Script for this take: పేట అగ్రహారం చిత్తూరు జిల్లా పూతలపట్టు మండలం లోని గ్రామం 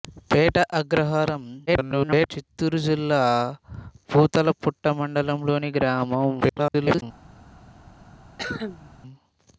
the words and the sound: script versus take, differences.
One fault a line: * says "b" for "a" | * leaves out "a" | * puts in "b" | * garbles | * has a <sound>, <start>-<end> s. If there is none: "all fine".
* garbles
* garbles
* has a cough, 8.4-8.9 s